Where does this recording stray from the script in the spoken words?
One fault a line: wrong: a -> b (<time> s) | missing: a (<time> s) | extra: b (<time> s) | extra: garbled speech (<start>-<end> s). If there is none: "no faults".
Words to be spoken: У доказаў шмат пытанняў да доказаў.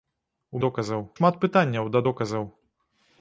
no faults